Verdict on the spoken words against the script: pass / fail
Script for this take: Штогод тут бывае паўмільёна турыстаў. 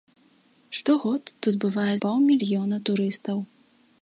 pass